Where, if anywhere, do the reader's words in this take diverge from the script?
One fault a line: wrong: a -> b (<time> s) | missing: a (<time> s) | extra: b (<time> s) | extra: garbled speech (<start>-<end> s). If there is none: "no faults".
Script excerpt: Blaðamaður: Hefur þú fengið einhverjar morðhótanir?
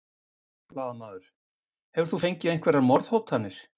no faults